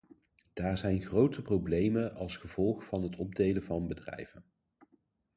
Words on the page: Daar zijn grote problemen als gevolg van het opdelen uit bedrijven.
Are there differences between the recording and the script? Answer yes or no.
yes